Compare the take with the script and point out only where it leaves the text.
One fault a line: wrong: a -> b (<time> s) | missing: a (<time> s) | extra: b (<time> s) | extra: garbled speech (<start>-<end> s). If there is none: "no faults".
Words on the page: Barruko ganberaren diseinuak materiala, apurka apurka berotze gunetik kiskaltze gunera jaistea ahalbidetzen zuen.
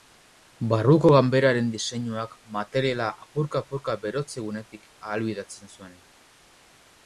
missing: kiskaltze gunera jaistea (4.9 s)